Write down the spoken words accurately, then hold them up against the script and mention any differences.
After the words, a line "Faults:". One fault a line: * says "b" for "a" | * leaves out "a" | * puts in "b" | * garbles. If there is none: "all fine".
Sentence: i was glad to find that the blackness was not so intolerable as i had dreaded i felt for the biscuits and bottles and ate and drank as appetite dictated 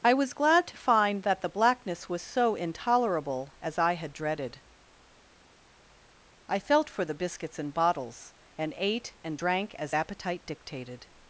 i was glad to find that the blackness was so intolerable as i had dreaded i felt for the biscuits and bottles and ate and drank as appetite dictated
Faults:
* leaves out "not"